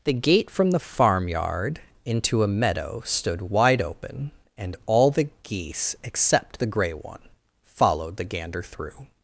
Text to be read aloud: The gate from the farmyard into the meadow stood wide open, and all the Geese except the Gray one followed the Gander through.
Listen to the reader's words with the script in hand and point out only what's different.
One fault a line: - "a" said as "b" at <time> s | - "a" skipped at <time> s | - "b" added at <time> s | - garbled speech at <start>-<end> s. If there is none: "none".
- "the" said as "a" at 2.4 s